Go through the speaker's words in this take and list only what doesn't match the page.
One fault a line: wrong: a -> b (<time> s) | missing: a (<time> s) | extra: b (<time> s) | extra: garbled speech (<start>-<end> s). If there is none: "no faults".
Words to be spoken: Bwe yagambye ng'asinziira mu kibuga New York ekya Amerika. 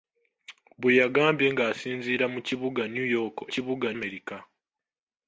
wrong: ekya -> kibuga (3.5 s)